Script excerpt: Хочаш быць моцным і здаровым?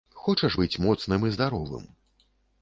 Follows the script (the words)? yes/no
yes